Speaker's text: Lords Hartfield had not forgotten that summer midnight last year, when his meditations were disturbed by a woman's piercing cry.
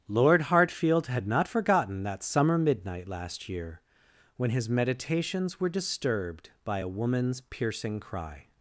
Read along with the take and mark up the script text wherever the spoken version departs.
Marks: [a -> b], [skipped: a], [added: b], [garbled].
[Lords -> Lord] Hartfield had not forgotten that summer midnight last year, when his meditations were disturbed by a woman's piercing cry.